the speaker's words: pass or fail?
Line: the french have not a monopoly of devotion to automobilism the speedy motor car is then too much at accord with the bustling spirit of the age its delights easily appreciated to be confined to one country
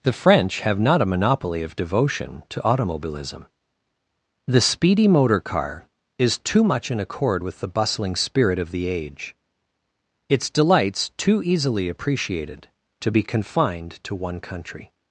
fail